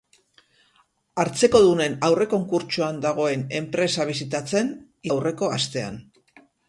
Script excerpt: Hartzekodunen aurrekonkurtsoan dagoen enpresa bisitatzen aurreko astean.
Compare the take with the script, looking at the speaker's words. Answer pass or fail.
pass